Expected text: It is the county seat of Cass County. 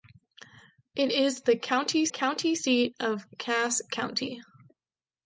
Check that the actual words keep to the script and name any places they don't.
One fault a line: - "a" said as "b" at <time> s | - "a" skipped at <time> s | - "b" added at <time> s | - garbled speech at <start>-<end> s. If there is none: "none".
- "county" added at 2.1 s